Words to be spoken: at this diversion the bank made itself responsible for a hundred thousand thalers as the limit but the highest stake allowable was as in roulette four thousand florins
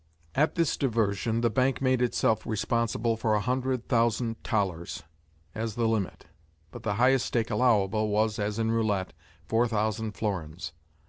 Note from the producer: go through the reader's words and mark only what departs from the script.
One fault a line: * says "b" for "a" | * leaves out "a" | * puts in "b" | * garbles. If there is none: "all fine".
all fine